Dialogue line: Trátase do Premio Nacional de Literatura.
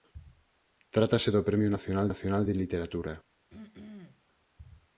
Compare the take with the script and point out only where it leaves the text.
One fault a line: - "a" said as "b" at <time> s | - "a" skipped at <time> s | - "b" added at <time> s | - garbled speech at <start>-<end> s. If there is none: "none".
- "Nacional" added at 2.1 s